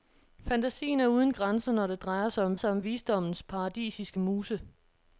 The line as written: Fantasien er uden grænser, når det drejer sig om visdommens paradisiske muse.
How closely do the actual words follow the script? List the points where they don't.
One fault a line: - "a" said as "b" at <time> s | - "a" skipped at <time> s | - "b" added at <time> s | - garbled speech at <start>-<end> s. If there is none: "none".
- "sig om" added at 2.6 s